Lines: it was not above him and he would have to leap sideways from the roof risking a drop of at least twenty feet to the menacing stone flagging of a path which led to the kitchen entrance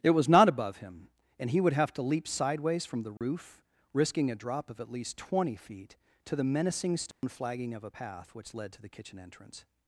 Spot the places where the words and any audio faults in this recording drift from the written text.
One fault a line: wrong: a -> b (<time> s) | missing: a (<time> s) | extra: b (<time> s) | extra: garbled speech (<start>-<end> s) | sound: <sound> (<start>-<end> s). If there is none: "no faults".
sound: dropout (3.2-3.2 s)
sound: dropout (7.1-7.2 s)